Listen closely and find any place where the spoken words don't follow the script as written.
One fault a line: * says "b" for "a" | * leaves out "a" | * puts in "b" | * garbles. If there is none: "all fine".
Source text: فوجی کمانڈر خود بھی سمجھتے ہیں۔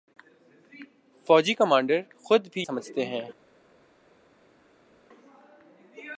all fine